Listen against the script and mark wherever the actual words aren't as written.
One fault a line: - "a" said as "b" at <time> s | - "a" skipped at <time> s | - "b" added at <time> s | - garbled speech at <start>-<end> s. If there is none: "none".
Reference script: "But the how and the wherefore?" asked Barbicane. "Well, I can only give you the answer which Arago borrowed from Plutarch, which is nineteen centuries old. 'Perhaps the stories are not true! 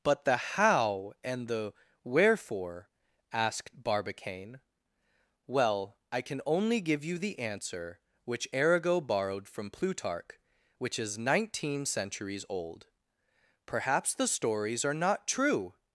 none